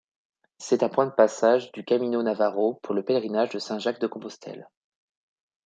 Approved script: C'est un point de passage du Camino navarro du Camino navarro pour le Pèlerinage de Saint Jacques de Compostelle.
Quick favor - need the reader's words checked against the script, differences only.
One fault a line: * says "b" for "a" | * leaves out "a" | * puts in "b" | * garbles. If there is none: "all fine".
* leaves out "du Camino navarro"